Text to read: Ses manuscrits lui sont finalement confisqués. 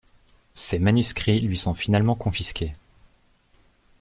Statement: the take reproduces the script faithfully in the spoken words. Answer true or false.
true